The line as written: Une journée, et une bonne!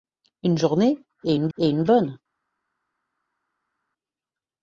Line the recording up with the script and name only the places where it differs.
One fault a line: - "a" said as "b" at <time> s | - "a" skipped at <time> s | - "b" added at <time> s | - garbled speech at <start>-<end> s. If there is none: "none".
- "et une" added at 1.6 s